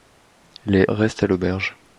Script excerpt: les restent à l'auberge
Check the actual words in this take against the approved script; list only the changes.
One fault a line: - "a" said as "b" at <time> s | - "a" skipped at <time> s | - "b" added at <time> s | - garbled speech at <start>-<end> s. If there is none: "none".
none